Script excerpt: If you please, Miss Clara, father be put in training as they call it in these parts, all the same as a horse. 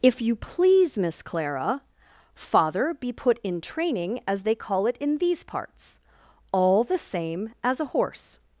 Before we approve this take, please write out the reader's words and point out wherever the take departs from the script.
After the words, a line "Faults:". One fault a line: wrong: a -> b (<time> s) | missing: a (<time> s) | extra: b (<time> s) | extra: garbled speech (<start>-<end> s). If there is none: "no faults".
If you please, Miss Clara, father be put in training as they call it in these parts, all the same as a horse.
Faults:
no faults